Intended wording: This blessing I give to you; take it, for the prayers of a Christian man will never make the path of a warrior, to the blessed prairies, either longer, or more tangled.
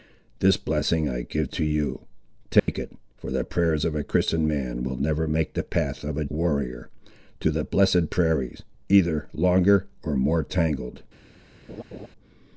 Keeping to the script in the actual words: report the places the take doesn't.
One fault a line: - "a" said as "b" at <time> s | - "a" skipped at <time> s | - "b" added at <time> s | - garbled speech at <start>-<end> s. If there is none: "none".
none